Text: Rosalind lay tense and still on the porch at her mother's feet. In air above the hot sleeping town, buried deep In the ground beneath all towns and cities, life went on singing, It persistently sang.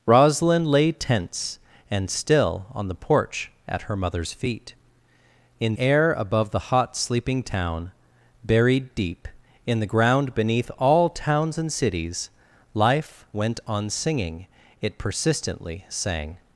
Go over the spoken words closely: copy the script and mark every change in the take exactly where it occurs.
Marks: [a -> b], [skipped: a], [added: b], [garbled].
Rosalind lay tense and still on the porch at her mother's feet. In air above the hot sleeping town, buried deep In the ground beneath all towns and cities, life went on singing, It persistently sang.